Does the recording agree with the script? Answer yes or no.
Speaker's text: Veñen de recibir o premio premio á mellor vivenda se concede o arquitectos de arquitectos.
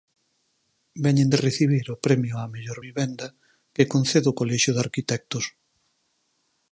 no